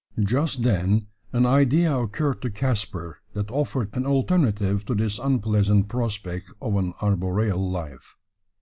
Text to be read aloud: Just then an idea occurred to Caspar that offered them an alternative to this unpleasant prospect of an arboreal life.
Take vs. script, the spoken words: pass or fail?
fail